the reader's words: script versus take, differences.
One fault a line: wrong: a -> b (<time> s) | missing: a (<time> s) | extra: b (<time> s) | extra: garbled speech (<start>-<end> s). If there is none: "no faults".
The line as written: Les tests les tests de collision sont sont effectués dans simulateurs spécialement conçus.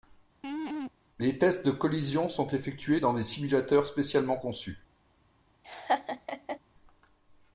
missing: les tests (1.6 s)
missing: sont (2.5 s)
extra: des (3.1 s)